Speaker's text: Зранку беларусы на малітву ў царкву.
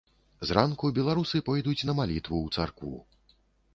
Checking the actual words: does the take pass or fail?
fail